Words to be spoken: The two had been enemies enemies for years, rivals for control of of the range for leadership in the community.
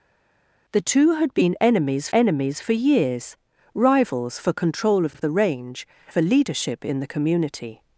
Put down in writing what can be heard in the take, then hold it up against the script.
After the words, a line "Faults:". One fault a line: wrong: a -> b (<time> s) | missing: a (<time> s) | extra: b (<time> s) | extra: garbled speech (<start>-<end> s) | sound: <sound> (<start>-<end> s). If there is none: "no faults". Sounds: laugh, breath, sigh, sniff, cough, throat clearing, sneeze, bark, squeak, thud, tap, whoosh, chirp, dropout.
The two had been enemies enemies for years, rivals for control of of the range for leadership in the community.
Faults:
no faults